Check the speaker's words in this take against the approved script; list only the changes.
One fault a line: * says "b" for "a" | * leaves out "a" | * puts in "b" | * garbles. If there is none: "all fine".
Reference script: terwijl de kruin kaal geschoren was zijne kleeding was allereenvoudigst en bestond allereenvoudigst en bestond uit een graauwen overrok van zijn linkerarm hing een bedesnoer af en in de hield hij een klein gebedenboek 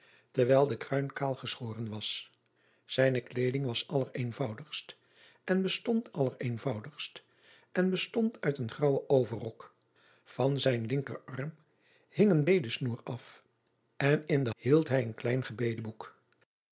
all fine